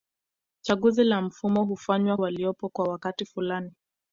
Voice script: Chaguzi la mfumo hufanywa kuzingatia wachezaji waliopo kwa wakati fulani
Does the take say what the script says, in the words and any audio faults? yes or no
no